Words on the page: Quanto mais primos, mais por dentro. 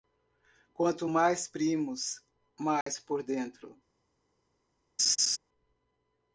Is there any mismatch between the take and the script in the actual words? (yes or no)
no